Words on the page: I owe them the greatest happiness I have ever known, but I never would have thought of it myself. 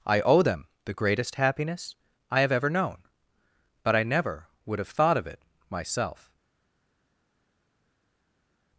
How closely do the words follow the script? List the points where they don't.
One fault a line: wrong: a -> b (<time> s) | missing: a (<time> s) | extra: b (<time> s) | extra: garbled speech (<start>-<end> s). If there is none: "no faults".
no faults